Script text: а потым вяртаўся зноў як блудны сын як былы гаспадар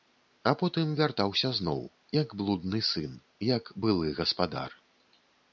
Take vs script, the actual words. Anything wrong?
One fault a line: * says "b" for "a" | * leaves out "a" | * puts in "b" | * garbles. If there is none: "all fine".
all fine